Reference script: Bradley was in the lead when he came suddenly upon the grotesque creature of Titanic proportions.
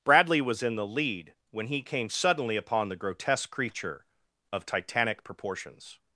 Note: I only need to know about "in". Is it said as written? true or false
true